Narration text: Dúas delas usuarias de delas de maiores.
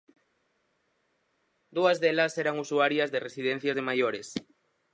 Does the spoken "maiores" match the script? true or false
true